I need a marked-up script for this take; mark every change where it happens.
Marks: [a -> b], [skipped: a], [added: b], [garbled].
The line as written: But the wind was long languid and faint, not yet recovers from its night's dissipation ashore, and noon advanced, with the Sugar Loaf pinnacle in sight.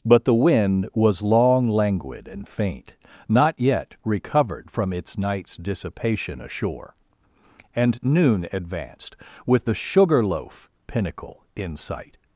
But the wind was long languid and faint, not yet [recovers -> recovered] from its night's dissipation ashore, and noon advanced, with the Sugar Loaf pinnacle in sight.